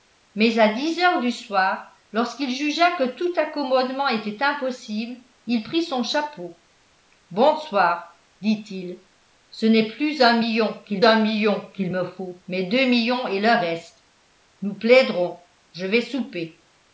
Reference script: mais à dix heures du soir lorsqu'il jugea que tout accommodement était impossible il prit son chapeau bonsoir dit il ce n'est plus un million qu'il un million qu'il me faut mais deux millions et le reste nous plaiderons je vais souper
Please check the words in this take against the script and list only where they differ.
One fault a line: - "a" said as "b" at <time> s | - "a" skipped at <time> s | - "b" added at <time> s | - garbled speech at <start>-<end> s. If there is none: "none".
none